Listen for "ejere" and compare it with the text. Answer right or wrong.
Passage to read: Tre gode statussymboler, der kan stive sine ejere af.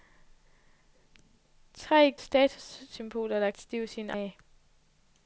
wrong